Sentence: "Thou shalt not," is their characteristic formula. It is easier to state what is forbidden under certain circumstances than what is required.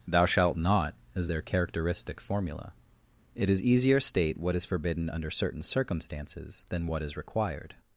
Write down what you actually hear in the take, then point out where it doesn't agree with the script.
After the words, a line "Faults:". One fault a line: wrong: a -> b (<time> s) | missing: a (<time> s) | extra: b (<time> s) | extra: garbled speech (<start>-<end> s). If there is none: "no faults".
"Thou shalt not," is their characteristic formula. It is easier state what is forbidden under certain circumstances than what is required.
Faults:
missing: to (4.0 s)